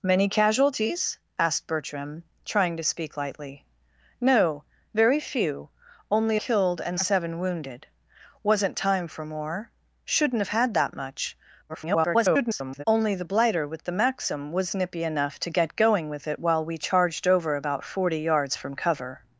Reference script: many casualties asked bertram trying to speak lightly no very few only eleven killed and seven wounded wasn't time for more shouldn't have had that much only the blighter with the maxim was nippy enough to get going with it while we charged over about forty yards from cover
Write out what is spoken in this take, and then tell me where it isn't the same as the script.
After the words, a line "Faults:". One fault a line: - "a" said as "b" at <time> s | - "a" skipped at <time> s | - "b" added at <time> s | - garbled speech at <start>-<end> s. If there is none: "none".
many casualties asked bertram trying to speak lightly no very few only killed and seven wounded wasn't time for more shouldn't have had that much [garbled] only the blighter with the maxim was nippy enough to get going with it while we charged over about forty yards from cover
Faults:
- "eleven" skipped at 6.4 s
- garbled speech at 11.7-12.8 s